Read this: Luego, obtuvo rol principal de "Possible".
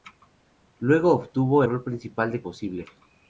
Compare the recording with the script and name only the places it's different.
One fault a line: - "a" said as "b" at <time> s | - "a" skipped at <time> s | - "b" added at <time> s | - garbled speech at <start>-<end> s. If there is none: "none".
none